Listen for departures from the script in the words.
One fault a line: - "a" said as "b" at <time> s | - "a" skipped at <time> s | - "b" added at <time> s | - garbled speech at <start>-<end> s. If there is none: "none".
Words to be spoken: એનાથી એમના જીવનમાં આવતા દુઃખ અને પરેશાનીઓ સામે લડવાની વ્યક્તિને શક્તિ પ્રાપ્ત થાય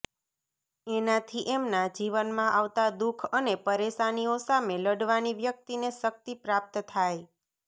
none